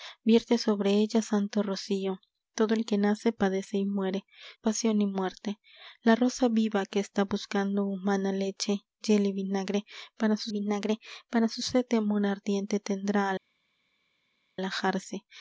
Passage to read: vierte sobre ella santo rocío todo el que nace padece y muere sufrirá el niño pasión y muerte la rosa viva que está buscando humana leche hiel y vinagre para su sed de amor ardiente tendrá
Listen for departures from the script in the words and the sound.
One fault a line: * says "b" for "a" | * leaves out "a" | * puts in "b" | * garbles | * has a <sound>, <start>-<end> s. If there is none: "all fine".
* leaves out "sufrirá el niño"
* puts in "vinagre para su"